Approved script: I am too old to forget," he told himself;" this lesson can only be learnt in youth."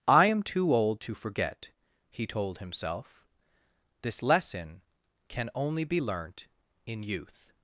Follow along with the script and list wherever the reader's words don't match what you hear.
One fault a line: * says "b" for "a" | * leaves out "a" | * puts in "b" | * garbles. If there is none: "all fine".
all fine